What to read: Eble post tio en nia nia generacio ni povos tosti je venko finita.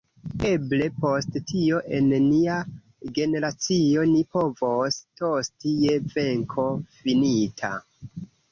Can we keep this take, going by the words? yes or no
no